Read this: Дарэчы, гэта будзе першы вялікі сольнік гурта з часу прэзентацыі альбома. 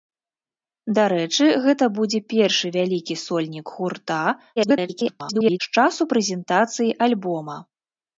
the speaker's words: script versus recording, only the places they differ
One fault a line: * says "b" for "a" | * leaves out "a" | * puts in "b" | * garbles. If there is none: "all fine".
* garbles